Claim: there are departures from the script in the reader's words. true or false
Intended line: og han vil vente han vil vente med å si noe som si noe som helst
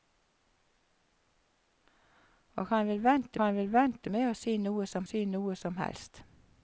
false